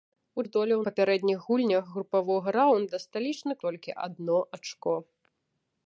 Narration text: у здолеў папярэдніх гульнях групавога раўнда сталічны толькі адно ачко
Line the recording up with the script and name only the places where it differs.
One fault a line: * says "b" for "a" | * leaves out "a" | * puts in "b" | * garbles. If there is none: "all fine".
all fine